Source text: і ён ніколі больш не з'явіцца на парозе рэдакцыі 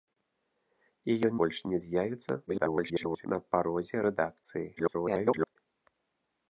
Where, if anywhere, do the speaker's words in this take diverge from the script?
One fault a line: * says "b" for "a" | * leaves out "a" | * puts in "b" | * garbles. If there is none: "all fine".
* leaves out "ніколі"
* garbles
* garbles